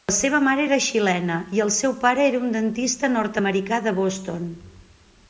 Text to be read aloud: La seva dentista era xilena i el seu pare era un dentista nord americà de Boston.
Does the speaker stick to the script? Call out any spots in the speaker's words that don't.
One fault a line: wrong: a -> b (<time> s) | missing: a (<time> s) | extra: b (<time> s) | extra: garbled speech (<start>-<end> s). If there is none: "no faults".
wrong: dentista -> mare (0.5 s)